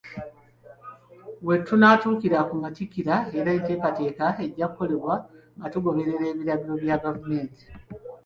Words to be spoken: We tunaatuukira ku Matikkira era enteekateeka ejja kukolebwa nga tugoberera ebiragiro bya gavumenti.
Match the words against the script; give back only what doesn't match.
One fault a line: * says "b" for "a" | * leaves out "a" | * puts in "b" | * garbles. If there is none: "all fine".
all fine